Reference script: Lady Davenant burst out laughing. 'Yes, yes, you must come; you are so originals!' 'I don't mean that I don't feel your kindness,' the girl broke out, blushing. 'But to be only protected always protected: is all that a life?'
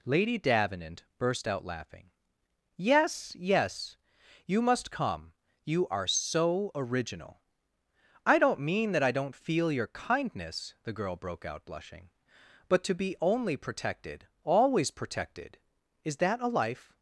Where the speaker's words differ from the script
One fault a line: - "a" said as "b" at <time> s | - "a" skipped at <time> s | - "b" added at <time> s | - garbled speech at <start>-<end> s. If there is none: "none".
- "originals" said as "original" at 6.7 s
- "all" skipped at 16.2 s